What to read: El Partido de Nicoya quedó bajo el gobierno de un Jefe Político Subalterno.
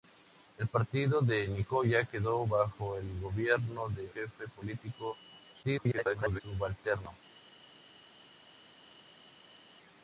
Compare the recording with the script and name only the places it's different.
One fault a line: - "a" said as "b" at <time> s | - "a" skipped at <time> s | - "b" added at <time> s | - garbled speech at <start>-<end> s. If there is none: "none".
- "un" skipped at 4.1 s
- garbled speech at 5.6-6.4 s